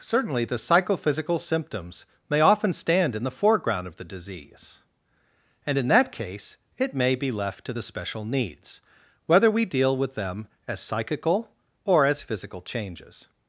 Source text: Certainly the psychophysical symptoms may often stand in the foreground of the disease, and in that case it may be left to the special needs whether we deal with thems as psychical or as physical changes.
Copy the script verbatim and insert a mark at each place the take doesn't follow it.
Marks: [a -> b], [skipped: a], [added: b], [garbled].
Certainly the psychophysical symptoms may often stand in the foreground of the disease, and in that case it may be left to the special needs whether we deal with [thems -> them] as psychical or as physical changes.